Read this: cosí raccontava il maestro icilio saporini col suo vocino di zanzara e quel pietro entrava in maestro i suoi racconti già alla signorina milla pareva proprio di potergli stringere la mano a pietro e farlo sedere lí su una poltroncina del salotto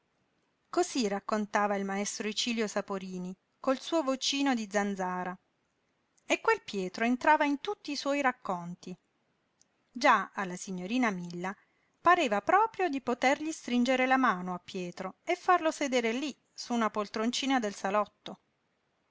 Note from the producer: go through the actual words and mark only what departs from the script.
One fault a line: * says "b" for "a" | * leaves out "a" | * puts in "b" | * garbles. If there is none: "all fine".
* says "tutti" for "maestro"